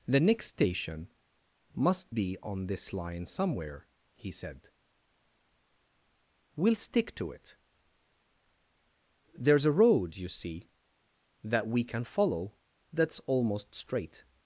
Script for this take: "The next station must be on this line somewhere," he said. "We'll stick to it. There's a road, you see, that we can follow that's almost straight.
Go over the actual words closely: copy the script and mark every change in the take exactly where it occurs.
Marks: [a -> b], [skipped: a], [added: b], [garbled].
"The next station must be on this line somewhere," he said. "We'll stick to it. There's a road, you see, that we can follow that's almost straight.